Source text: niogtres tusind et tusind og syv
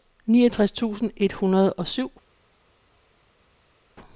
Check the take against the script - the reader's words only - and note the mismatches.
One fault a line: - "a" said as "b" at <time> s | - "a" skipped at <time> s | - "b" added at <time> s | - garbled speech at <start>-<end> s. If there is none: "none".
- "tusind" said as "hundrede" at 1.3 s